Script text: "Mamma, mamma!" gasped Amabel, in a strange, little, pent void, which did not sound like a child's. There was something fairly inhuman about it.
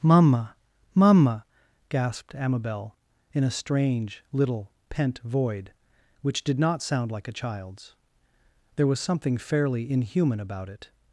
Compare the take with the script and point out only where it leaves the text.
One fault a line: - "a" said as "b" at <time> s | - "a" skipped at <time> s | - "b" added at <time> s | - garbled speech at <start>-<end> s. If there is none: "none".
none